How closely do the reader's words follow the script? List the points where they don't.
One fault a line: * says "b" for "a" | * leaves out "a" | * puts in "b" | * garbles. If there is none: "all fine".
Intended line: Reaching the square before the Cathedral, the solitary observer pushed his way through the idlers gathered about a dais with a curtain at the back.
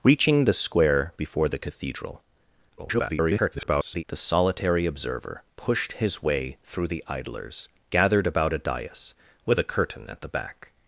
* garbles